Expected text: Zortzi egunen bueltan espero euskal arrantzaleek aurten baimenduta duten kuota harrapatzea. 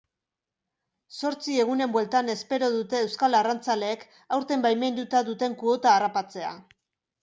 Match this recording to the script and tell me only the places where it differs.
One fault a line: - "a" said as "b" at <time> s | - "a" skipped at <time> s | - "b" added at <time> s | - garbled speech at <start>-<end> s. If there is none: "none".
- "dute" added at 2.8 s